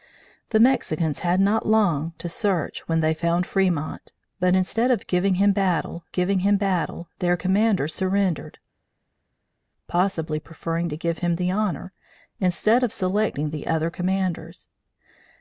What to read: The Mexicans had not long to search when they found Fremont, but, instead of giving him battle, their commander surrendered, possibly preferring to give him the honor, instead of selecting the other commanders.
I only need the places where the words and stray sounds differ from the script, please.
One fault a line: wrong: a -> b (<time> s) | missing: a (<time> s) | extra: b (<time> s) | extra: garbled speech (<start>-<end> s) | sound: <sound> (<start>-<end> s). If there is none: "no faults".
extra: giving him battle (6.1 s)